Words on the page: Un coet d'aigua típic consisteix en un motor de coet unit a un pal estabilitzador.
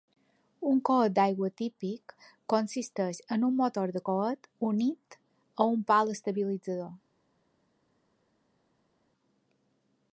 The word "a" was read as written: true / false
true